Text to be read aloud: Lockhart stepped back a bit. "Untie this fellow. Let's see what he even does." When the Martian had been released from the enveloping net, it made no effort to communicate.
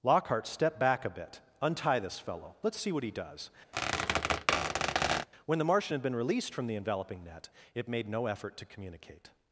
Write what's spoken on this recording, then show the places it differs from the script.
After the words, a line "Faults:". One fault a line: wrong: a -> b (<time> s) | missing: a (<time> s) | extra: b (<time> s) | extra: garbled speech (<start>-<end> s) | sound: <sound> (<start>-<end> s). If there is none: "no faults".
Lockhart stepped back a bit. "Untie this fellow. Let's see what he does." When the Martian had been released from the enveloping net, it made no effort to communicate.
Faults:
missing: even (3.1 s)
sound: squeak (3.7-5.3 s)